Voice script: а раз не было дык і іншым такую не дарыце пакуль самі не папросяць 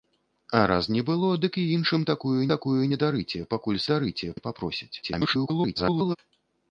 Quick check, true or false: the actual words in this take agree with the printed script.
false